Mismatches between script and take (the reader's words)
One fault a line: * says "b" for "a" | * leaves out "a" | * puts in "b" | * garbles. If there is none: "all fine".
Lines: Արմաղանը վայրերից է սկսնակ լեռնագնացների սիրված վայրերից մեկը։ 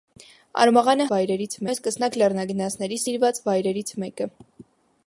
all fine